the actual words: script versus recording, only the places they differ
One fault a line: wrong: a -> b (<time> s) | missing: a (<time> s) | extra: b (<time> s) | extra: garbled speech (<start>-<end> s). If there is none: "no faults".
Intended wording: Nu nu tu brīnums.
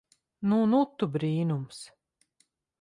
no faults